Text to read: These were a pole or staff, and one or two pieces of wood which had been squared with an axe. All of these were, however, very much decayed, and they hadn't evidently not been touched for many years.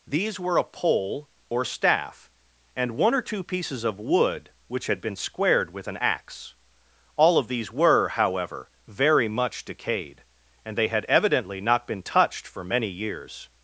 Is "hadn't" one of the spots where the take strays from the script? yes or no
yes